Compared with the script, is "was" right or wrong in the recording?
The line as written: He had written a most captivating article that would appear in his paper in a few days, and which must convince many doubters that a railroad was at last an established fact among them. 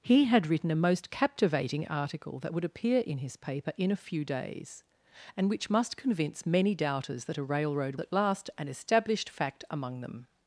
wrong